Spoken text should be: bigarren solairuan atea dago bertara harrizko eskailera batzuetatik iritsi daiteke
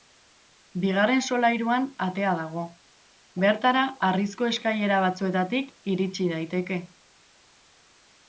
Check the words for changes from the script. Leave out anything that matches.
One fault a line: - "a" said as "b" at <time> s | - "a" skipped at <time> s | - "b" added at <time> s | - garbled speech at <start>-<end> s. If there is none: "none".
none